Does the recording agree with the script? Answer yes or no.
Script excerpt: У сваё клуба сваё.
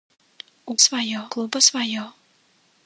yes